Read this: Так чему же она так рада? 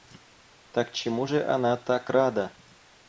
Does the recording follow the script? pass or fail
pass